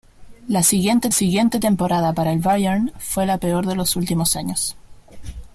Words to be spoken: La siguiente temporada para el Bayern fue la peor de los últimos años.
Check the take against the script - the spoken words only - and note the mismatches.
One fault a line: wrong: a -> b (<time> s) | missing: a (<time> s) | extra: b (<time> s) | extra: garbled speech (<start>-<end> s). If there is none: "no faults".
extra: siguiente (1.1 s)